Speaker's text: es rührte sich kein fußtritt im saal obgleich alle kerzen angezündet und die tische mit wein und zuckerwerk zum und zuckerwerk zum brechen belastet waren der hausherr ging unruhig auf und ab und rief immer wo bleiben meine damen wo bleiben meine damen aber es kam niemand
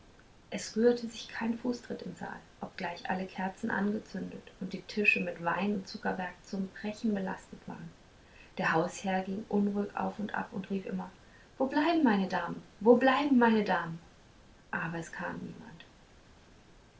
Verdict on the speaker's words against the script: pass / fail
fail